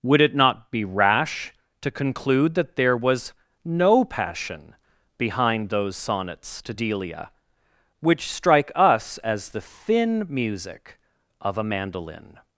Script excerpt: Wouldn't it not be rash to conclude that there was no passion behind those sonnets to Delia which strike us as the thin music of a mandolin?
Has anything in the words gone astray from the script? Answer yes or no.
yes